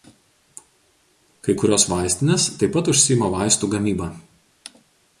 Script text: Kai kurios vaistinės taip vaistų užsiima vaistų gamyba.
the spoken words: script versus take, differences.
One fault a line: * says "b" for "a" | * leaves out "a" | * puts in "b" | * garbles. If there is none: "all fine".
* says "pat" for "vaistų"